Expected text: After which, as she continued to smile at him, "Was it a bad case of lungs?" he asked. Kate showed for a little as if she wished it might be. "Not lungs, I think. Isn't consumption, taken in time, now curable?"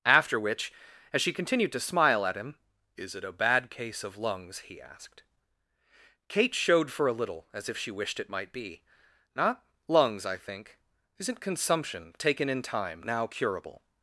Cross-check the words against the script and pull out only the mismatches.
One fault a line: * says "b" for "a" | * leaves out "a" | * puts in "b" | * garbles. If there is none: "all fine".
* says "Is" for "Was"